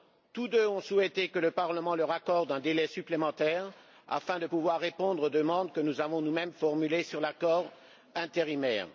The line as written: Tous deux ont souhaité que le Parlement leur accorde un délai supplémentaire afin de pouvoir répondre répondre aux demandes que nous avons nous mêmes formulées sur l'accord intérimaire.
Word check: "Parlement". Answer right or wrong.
right